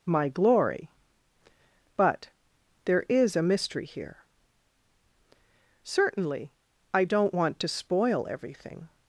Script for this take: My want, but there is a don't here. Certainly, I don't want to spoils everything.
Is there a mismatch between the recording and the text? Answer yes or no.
yes